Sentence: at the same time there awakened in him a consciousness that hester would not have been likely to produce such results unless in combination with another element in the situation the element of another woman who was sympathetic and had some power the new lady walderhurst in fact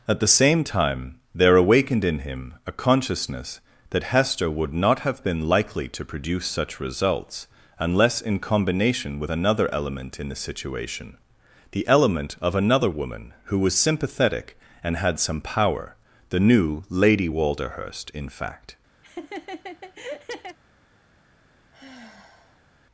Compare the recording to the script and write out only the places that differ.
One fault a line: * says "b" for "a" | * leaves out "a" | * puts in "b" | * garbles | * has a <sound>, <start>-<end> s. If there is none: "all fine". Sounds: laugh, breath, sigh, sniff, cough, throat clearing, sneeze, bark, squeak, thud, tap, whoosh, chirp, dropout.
* has a laugh, 19.0-20.6 s
* has a sigh, 21.7-22.7 s